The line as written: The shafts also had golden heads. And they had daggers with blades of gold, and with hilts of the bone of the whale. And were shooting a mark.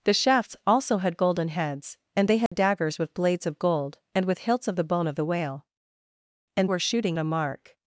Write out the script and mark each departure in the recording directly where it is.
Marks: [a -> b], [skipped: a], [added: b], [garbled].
The shafts also had golden heads. And they had daggers with blades of gold, and with hilts of the bone of the whale. And were shooting a mark.